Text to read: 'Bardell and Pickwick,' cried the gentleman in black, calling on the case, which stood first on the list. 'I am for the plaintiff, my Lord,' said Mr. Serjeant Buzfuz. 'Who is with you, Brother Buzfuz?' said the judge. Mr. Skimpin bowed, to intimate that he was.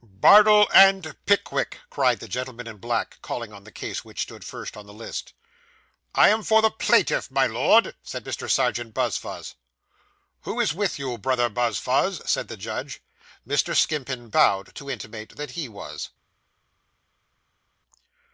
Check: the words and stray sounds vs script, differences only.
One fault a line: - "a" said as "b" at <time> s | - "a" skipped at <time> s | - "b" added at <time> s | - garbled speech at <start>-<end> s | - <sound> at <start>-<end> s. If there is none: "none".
none